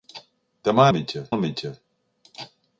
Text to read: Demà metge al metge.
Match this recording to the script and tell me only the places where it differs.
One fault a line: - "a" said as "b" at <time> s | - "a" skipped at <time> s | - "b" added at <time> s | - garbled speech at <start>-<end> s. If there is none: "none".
none